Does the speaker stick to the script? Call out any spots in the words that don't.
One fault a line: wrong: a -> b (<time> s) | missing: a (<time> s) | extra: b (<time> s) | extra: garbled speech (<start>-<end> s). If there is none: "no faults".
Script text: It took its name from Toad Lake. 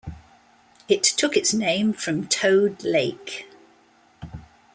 no faults